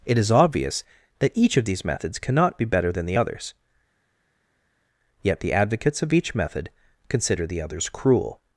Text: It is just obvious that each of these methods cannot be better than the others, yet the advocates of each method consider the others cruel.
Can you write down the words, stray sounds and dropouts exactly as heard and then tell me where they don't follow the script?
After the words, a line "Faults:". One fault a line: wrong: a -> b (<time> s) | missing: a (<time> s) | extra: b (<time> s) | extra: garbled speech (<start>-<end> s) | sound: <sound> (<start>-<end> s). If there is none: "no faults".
It is obvious that each of these methods cannot be better than the others, yet the advocates of each method consider the others cruel.
Faults:
missing: just (0.3 s)